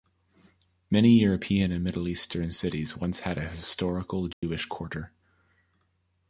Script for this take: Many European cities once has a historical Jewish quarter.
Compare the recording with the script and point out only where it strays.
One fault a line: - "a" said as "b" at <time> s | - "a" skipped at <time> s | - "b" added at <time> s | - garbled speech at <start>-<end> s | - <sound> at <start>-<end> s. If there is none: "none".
- "and Middle Eastern" added at 1.7 s
- "has" said as "had" at 3.2 s
- dropout at 4.3-4.4 s